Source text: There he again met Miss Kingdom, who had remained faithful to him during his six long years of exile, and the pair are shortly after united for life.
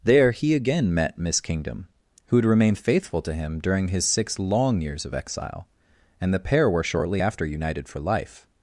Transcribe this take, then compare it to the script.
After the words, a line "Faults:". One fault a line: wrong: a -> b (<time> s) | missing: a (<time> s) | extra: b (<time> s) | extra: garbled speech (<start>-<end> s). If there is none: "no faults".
There he again met Miss Kingdom, who had remained faithful to him during his six long years of exile, and the pair were shortly after united for life.
Faults:
wrong: are -> were (6.7 s)